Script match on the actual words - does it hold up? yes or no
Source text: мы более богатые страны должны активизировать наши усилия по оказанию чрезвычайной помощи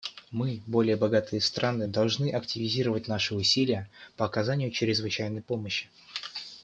yes